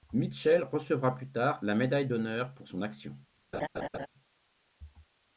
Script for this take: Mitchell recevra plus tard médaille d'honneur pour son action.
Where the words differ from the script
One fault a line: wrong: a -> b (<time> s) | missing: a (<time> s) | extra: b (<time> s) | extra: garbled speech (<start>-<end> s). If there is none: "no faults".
extra: la (1.6 s)